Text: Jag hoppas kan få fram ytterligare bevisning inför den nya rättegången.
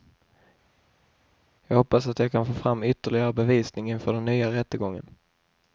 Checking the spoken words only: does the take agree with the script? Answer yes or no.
no